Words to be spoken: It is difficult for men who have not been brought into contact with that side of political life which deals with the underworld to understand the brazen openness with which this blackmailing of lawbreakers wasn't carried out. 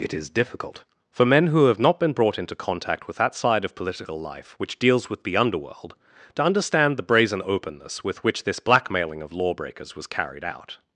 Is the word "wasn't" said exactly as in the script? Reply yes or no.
no